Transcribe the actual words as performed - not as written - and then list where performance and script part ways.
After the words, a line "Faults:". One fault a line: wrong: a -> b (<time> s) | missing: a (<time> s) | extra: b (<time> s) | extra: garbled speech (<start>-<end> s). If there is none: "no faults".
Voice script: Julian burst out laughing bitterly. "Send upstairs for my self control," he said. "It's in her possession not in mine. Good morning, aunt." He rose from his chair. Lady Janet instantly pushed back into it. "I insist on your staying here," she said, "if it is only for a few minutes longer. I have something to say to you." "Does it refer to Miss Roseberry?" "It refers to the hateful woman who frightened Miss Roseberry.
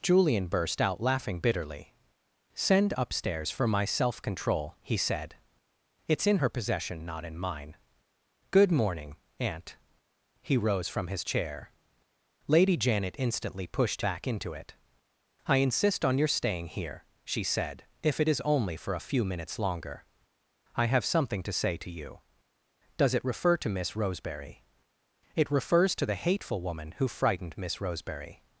Julian burst out laughing bitterly. "Send upstairs for my self control," he said. "It's in her possession not in mine. Good morning, aunt." He rose from his chair. Lady Janet instantly pushed back into it. "I insist on your staying here," she said, "if it is only for a few minutes longer. I have something to say to you." "Does it refer to Miss Roseberry?" "It refers to the hateful woman who frightened Miss Roseberry.
Faults:
no faults